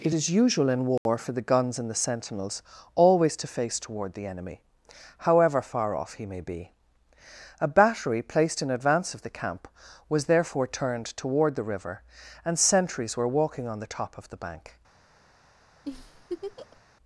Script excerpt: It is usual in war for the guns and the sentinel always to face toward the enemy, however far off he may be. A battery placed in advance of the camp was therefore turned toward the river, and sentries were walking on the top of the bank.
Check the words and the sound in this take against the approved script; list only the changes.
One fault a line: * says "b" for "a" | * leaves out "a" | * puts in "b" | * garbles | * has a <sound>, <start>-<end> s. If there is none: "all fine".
* has a dropout, 1.0-1.1 s
* says "sentinels" for "sentinel"
* has a laugh, 15.8-16.8 s